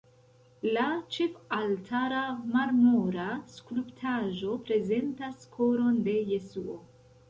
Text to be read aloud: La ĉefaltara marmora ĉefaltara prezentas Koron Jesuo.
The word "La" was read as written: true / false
true